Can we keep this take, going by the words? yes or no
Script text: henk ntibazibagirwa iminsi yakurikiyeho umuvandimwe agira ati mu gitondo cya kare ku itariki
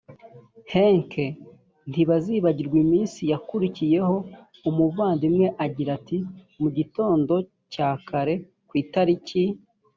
yes